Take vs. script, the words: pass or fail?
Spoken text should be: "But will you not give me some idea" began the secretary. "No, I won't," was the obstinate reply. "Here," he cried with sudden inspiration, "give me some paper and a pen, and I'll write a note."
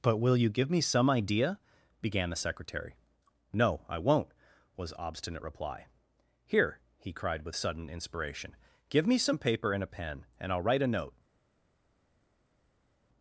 fail